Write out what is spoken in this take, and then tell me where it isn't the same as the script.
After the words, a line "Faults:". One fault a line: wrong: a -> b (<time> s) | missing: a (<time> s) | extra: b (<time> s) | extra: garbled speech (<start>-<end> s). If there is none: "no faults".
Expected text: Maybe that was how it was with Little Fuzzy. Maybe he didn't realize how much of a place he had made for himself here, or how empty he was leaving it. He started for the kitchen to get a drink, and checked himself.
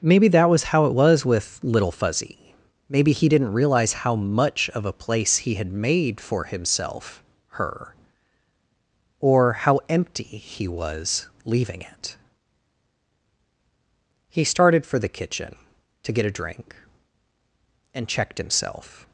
Maybe that was how it was with Little Fuzzy. Maybe he didn't realize how much of a place he had made for himself her, or how empty he was leaving it. He started for the kitchen to get a drink, and checked himself.
Faults:
wrong: here -> her (7.5 s)